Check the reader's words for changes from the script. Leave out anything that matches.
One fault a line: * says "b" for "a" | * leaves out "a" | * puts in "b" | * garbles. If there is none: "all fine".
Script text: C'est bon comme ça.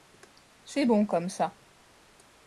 all fine